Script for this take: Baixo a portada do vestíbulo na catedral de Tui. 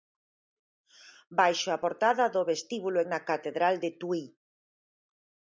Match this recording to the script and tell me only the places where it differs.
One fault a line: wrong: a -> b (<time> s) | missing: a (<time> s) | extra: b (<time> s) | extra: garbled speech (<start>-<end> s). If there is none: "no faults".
no faults